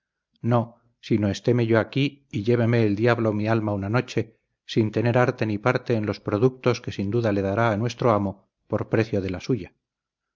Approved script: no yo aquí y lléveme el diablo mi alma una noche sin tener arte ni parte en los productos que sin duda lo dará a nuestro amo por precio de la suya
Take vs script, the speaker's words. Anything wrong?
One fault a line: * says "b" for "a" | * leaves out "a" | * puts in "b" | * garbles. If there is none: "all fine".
* puts in "sino estéme"
* says "le" for "lo"